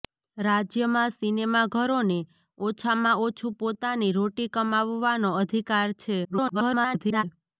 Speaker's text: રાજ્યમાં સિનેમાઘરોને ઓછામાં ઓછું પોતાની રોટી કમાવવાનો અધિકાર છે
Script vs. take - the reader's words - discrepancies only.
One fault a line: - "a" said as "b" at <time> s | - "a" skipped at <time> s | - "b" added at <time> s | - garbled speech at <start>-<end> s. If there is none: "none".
- garbled speech at 6.2-7.2 s